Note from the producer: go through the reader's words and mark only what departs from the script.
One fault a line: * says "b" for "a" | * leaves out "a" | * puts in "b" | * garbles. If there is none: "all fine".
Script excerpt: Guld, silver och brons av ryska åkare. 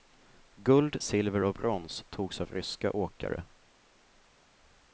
* puts in "togs"